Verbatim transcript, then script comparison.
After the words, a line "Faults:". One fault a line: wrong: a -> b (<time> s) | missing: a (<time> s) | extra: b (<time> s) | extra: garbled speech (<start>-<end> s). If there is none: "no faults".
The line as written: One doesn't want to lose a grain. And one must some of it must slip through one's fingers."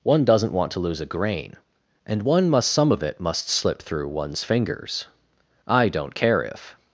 One doesn't want to lose a grain. And one must some of it must slip through one's fingers." "I don't care if
Faults:
extra: I don't care if (5.7 s)